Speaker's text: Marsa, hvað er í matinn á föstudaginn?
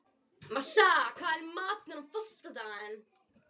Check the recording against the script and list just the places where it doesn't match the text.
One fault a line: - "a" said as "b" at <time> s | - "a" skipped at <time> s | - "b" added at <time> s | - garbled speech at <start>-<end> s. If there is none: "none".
none